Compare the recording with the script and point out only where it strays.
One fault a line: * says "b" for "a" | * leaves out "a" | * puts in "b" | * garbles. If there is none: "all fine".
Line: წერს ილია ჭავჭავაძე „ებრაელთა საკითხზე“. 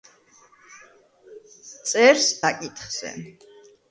* leaves out "ილია ჭავჭავაძე ებრაელთა"